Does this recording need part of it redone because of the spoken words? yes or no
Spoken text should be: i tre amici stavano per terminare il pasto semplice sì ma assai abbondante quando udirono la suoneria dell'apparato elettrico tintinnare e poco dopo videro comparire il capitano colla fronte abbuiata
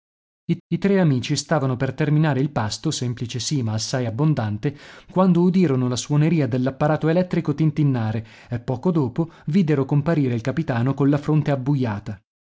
yes